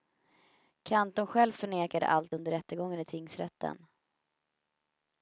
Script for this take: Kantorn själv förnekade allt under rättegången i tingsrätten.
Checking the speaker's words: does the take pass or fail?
pass